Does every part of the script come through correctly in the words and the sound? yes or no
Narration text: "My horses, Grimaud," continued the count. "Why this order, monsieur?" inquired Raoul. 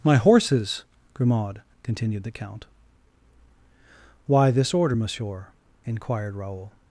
yes